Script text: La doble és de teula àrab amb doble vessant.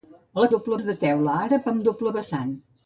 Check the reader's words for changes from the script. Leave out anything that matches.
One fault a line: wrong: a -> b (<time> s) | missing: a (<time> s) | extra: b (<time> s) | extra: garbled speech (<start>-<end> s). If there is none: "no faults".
no faults